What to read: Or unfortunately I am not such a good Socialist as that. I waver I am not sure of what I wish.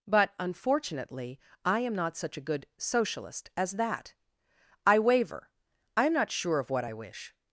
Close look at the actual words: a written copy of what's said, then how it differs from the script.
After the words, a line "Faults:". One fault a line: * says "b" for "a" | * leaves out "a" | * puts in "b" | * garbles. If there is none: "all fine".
But unfortunately I am not such a good Socialist as that. I waver I am not sure of what I wish.
Faults:
* says "But" for "Or"